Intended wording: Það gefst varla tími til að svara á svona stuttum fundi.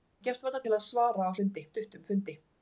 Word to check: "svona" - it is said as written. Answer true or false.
false